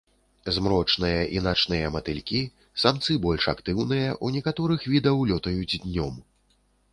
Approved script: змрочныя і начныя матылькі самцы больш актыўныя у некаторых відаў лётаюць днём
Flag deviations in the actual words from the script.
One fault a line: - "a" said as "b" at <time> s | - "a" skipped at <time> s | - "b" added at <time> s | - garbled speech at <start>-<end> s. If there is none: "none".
none